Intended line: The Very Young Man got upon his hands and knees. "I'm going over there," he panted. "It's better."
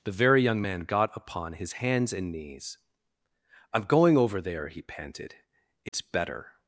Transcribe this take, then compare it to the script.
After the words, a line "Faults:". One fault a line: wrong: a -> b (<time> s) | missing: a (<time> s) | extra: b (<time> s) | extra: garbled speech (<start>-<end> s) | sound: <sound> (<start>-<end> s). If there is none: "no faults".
The Very Young Man got upon his hands and knees. "I'm going over there," he panted. "It's better."
Faults:
sound: dropout (5.9-5.9 s)